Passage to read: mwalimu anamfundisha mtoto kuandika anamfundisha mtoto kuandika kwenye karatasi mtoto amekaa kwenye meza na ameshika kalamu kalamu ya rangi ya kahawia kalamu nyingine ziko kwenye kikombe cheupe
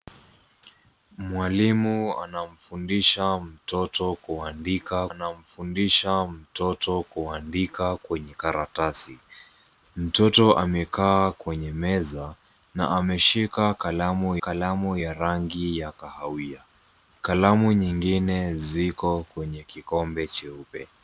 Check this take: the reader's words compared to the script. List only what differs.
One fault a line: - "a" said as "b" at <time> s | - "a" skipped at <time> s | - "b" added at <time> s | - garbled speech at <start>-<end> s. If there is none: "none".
none